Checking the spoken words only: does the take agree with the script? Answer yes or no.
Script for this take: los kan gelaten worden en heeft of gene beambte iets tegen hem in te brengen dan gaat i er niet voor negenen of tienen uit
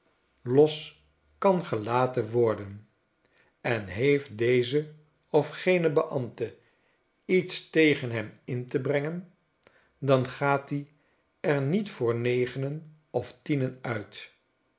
no